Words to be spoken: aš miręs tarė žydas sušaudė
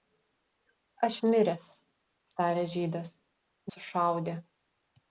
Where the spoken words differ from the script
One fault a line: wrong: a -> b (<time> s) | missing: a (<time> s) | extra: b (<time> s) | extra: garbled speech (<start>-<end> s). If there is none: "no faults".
no faults